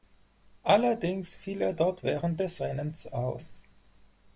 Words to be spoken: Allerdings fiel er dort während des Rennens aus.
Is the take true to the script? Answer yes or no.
yes